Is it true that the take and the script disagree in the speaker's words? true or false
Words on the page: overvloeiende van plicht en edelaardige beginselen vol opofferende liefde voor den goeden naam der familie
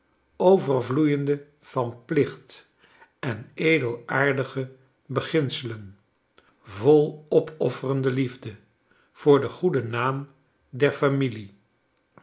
false